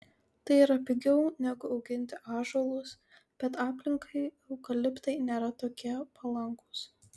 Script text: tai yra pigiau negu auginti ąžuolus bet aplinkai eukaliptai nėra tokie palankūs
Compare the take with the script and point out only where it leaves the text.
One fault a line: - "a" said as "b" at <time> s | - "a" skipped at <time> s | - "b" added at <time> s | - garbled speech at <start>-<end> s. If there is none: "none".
none